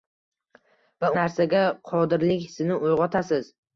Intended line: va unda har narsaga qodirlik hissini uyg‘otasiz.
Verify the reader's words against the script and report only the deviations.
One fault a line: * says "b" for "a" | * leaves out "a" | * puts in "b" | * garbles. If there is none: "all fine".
* leaves out "unda har"